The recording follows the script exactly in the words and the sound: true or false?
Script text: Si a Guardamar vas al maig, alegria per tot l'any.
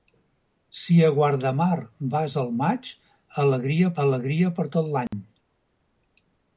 false